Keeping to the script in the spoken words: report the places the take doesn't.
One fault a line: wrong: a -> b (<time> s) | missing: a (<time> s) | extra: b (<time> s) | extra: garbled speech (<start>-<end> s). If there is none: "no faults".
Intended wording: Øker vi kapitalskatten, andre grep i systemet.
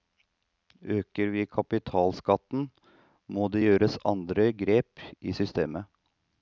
extra: må det gjøres (3.3 s)